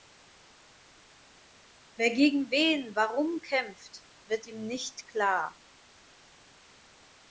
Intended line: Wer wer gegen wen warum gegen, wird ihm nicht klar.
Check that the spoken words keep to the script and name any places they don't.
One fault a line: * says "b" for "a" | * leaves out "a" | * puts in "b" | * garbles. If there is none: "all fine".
* leaves out "wer"
* says "kämpft" for "gegen"